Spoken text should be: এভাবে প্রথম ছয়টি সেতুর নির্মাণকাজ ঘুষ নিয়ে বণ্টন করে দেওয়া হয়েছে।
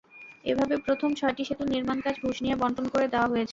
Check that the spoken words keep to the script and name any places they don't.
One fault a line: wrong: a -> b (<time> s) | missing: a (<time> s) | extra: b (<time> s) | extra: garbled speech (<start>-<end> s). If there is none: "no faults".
no faults